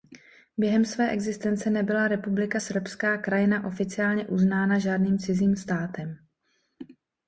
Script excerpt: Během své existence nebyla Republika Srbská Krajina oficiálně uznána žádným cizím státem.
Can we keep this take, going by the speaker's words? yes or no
yes